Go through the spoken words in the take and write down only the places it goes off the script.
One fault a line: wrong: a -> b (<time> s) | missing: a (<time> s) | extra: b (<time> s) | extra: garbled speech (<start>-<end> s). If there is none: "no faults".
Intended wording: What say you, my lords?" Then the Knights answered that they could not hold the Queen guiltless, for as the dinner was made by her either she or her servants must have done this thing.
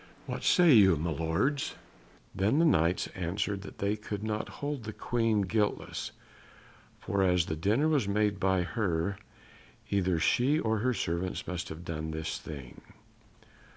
no faults